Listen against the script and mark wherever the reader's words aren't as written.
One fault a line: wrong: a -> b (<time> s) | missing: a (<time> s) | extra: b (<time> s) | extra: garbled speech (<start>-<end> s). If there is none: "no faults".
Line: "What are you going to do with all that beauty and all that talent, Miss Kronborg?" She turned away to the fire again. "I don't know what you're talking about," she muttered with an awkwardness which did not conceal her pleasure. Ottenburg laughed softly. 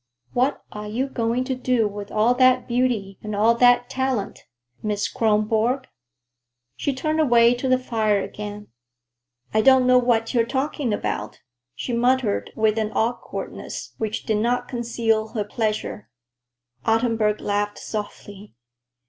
no faults